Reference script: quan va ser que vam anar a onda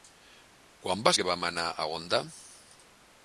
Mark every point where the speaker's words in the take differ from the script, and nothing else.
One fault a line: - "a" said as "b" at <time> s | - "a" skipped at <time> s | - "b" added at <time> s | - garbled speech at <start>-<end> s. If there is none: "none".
- "ser" skipped at 1.1 s